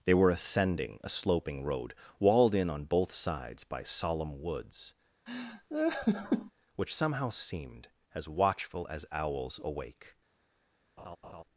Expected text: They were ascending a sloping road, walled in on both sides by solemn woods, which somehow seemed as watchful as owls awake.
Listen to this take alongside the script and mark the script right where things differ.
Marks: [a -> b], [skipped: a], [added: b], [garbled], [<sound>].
They were ascending a sloping road, walled in on both sides by solemn woods, [laugh] which somehow seemed as watchful as owls awake. [laugh]